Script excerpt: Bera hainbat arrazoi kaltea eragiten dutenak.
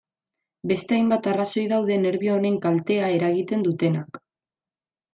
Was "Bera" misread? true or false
true